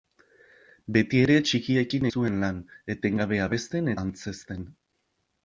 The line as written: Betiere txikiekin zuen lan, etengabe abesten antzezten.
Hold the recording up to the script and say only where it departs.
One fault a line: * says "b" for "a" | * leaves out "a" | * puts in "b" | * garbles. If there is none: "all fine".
all fine